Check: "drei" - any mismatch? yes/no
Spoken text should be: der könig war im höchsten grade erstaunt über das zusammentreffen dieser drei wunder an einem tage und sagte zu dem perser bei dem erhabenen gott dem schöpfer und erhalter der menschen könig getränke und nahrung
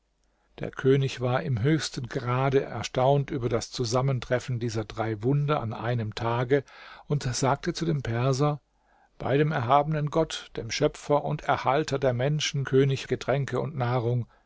no